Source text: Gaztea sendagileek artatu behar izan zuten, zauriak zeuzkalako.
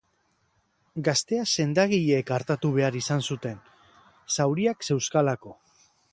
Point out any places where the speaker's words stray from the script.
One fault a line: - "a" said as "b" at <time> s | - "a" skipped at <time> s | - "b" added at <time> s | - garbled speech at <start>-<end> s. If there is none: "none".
none